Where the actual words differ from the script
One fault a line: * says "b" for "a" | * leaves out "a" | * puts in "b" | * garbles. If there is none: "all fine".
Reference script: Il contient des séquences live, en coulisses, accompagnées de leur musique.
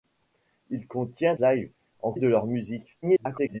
* leaves out "des séquences"
* leaves out "coulisses accompagnées"
* garbles